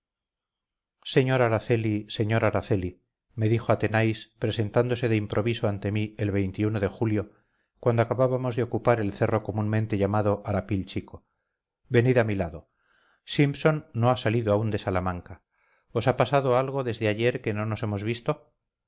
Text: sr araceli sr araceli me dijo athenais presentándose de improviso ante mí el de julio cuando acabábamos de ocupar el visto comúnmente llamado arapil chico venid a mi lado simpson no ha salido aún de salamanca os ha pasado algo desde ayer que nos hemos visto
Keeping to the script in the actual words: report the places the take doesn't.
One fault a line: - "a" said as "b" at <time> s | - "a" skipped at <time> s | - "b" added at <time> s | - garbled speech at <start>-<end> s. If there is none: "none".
- "visto" said as "cerro" at 9.1 s
- "no" added at 17.5 s